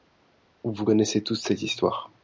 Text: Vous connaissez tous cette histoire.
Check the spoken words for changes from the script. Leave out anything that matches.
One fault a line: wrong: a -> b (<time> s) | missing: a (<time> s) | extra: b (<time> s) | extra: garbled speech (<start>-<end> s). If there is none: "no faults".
no faults